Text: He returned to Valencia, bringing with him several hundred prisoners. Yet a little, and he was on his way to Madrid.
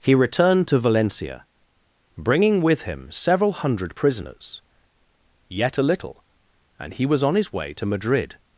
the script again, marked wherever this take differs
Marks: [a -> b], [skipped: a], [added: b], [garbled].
He returned to Valencia, bringing with him several hundred prisoners. Yet a little, and he was on his way to Madrid.